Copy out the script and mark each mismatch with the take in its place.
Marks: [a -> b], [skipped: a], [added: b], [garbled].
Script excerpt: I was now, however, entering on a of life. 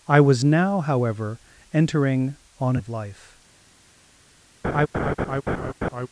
I was now, however, entering on a of life.